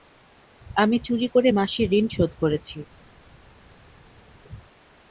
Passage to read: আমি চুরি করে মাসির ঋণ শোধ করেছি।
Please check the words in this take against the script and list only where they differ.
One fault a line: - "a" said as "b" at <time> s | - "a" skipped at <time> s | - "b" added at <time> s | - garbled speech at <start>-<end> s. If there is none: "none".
none